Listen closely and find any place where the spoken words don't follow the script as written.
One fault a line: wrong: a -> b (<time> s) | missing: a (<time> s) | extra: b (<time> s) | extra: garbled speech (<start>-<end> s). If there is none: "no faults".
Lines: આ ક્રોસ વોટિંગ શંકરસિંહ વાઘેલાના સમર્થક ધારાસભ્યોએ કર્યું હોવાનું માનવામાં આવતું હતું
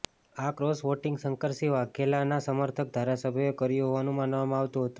no faults